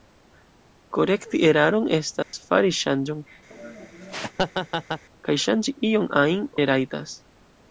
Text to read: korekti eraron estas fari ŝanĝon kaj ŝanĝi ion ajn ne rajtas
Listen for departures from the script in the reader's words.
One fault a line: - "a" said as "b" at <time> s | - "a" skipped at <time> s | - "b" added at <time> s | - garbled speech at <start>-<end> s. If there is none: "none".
none